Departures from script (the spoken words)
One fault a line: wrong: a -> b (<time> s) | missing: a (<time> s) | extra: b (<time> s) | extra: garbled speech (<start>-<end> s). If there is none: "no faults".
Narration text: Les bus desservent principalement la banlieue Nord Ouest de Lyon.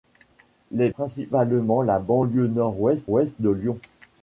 missing: bus desservent (0.9 s)
extra: Ouest (3.1 s)